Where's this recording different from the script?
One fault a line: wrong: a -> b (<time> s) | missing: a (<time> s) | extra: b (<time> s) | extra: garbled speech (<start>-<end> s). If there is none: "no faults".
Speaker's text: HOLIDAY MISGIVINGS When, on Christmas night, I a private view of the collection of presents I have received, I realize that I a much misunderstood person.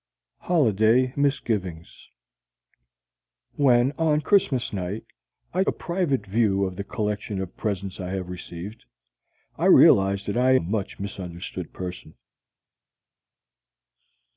no faults